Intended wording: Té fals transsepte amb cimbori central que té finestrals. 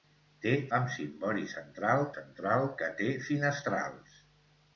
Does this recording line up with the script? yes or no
no